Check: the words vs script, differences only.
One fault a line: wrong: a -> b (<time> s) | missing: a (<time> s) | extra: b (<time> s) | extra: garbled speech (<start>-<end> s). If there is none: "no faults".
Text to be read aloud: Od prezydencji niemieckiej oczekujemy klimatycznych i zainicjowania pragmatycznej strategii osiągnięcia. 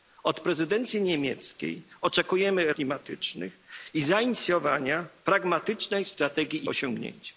no faults